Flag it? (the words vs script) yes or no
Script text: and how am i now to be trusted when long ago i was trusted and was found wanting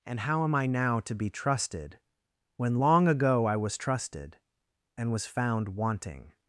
no